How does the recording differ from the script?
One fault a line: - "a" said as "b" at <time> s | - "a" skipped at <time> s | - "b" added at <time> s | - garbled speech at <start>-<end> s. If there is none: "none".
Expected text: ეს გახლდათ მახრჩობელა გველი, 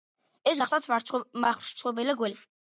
none